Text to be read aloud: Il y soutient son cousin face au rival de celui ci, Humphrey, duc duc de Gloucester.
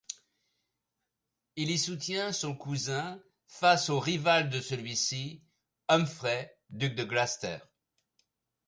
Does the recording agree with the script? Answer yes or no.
no